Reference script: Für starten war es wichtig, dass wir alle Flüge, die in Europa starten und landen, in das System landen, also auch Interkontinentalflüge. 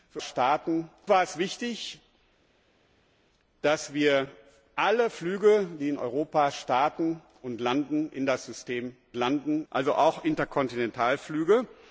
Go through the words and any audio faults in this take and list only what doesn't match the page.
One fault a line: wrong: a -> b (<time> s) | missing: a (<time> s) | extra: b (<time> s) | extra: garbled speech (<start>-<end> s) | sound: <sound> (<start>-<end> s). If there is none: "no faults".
no faults